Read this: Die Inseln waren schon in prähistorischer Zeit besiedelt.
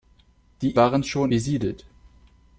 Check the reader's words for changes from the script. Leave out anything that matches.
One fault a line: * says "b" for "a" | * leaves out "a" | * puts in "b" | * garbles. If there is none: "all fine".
* leaves out "Inseln"
* leaves out "in prähistorischer Zeit"